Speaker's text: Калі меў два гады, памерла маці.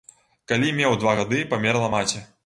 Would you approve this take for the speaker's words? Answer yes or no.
yes